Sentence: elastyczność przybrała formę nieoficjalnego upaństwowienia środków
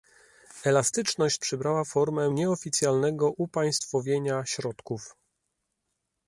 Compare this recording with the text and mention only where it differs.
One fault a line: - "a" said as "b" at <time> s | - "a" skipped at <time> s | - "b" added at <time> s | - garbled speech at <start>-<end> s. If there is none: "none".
none